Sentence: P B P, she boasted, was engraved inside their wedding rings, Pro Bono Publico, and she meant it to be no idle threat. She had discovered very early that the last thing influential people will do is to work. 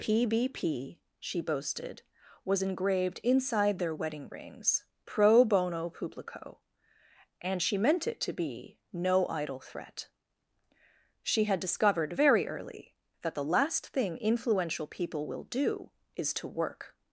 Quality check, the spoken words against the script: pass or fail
pass